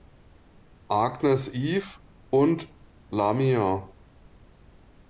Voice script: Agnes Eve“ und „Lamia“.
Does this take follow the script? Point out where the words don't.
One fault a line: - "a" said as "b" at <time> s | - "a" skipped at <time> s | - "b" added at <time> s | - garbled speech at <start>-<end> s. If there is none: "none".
none